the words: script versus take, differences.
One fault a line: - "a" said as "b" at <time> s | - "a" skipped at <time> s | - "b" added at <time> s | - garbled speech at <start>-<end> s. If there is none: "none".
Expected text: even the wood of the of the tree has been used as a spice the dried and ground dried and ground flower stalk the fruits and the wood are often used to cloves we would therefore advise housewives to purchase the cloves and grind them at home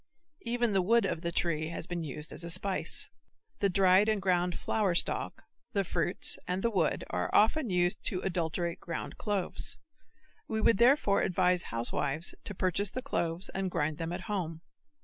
- "of the" skipped at 1.3 s
- "dried and ground" skipped at 4.6 s
- "adulterate ground" added at 8.2 s